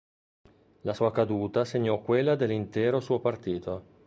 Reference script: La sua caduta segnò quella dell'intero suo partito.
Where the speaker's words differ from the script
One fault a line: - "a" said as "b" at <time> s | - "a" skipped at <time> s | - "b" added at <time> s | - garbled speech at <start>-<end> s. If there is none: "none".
none